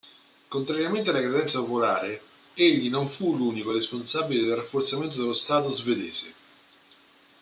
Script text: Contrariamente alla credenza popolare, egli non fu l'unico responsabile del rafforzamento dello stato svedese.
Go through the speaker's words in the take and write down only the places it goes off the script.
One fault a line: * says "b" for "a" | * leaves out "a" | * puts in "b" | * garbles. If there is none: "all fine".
all fine